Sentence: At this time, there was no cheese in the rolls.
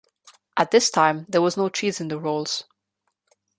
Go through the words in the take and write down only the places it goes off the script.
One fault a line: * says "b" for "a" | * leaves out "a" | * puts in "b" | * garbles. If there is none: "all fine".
all fine